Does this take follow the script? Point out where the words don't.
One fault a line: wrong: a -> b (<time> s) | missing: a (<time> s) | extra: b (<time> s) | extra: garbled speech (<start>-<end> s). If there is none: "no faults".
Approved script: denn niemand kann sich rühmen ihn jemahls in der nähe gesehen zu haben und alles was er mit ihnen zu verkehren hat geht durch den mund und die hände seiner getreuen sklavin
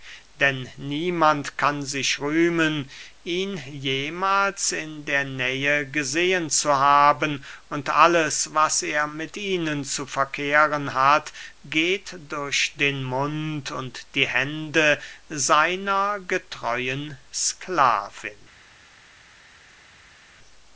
no faults